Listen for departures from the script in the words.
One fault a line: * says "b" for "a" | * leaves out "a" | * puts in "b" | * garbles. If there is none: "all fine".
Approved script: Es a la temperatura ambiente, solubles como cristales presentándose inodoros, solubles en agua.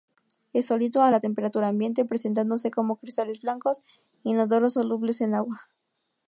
* puts in "sólido"
* says "presentándose" for "solubles"
* says "blancos" for "presentándose"